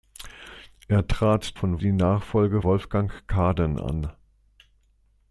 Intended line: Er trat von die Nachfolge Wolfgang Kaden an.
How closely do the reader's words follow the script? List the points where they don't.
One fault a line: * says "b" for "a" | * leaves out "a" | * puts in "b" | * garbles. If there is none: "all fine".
all fine